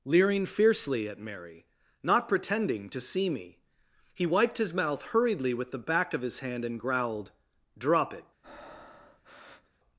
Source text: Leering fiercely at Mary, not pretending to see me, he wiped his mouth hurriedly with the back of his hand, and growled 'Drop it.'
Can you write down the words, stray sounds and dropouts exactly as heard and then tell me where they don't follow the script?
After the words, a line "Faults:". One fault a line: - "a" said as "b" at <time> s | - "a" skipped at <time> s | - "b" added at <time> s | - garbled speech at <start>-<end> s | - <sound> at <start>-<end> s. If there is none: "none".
Leering fiercely at Mary, not pretending to see me, he wiped his mouth hurriedly with the back of his hand, and growled 'Drop it.'
Faults:
- breath at 8.4-9.8 s